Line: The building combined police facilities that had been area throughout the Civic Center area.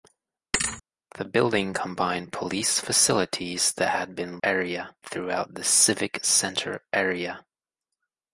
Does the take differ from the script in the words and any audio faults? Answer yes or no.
yes